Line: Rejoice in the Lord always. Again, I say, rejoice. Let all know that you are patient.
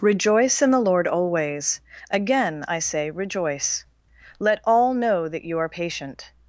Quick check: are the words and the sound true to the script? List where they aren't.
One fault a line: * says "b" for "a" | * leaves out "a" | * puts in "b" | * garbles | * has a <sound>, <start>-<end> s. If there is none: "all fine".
all fine